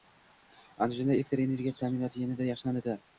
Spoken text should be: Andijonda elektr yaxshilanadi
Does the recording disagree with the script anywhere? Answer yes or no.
yes